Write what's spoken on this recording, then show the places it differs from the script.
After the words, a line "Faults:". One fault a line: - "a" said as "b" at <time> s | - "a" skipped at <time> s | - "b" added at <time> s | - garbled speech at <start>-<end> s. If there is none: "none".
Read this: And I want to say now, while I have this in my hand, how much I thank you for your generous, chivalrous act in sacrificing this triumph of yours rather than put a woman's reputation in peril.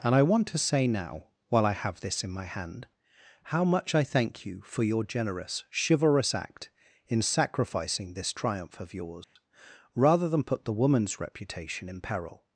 And I want to say now, while I have this in my hand, how much I thank you for your generous, chivalrous act in sacrificing this triumph of yours rather than put the woman's reputation in peril.
Faults:
- "a" said as "the" at 10.7 s